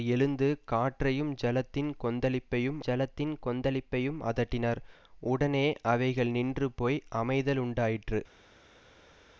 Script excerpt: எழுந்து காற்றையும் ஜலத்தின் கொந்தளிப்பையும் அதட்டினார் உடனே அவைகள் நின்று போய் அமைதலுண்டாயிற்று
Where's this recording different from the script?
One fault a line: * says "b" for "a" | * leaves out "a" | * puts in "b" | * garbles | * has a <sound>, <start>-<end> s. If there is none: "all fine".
* puts in "ஜலத்தின் கொந்தளிப்பையும்"